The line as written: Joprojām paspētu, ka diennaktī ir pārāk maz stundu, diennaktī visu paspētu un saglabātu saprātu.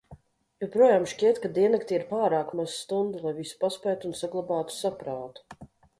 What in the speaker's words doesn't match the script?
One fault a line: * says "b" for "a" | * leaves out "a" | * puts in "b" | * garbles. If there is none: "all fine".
* says "šķiet" for "paspētu"
* says "lai" for "diennaktī"